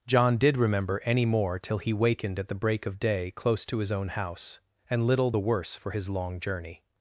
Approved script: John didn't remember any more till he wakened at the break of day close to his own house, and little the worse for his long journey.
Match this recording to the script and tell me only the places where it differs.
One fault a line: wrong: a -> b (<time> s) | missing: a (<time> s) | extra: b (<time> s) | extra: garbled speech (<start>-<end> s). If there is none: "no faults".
wrong: didn't -> did (0.4 s)